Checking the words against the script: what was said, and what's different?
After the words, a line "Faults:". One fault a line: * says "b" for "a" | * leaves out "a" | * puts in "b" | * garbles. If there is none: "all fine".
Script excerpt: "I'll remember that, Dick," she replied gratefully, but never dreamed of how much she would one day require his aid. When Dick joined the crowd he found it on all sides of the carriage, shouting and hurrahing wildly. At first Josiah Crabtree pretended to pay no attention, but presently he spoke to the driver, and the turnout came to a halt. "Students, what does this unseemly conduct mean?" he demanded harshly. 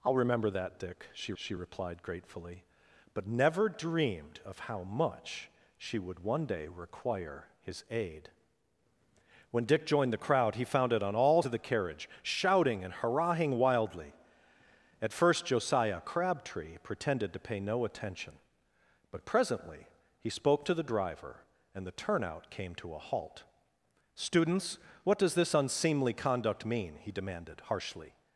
"I'll remember that, Dick," she she replied gratefully, but never dreamed of how much she would one day require his aid. When Dick joined the crowd he found it on all of the carriage, shouting and hurrahing wildly. At first Josiah Crabtree pretended to pay no attention, but presently he spoke to the driver, and the turnout came to a halt. "Students, what does this unseemly conduct mean?" he demanded harshly.
Faults:
* puts in "she"
* leaves out "sides"